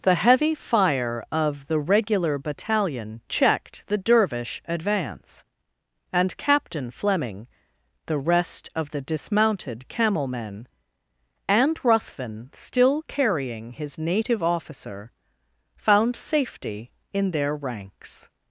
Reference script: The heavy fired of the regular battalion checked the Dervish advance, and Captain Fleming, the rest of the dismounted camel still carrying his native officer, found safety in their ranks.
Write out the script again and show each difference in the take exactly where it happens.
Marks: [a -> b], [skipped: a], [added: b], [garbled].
The heavy [fired -> fire] of the regular battalion checked the Dervish advance, and Captain Fleming, the rest of the dismounted camel [added: men and Ruthven] still carrying his native officer, found safety in their ranks.